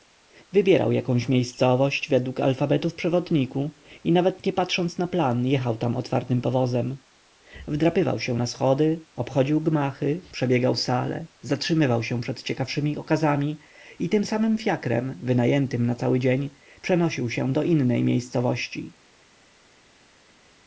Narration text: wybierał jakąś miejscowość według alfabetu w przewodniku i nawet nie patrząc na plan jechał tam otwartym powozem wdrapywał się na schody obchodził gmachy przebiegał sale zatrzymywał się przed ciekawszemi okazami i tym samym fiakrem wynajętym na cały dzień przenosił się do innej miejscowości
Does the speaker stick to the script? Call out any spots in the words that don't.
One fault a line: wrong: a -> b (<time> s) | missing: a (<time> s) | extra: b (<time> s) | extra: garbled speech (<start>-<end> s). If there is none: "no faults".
no faults